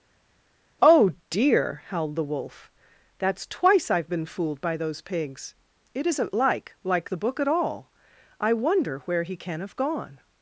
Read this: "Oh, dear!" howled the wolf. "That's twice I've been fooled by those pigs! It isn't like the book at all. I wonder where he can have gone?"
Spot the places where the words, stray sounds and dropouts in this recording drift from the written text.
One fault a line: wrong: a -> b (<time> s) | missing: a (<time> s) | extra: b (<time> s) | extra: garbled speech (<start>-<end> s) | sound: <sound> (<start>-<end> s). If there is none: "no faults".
extra: like (6.8 s)